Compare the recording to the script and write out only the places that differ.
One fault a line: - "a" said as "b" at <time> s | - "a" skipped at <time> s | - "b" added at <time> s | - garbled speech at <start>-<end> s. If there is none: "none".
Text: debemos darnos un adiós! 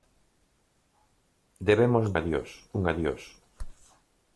- "darnos" said as "adiós" at 2.1 s